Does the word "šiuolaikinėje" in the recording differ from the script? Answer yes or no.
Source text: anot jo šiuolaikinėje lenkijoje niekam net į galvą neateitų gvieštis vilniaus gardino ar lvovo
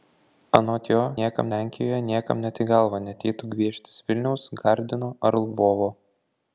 yes